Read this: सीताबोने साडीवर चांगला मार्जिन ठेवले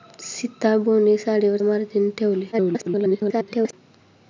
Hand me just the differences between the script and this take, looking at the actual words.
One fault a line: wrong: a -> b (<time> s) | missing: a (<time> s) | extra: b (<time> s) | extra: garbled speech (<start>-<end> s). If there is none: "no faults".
missing: चांगला (1.6 s)
extra: garbled speech (2.5-3.7 s)